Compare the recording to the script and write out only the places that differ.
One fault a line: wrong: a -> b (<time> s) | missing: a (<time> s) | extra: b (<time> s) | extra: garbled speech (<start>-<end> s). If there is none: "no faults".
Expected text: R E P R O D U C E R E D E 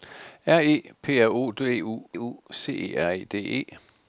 extra: U (2.1 s)